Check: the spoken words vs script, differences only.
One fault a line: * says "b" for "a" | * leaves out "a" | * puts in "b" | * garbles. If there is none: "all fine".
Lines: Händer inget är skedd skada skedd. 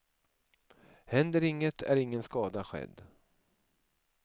* says "ingen" for "skedd"